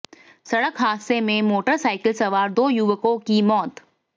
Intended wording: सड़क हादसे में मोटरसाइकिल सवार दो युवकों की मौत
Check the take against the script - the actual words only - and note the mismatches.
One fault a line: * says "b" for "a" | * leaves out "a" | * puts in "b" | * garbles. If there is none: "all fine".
all fine